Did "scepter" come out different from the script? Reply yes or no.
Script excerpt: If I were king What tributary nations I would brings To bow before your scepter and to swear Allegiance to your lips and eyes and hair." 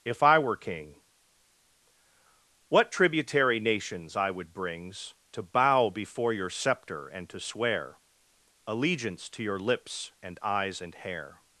no